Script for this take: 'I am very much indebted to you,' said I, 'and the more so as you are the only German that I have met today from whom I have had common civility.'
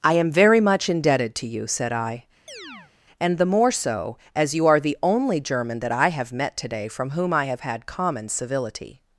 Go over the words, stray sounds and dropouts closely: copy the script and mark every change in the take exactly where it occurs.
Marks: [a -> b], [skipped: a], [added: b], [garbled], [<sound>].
'I am very much indebted to you,' said I, [chirp] 'and the more so as you are the only German that I have met today from whom I have had common civility.'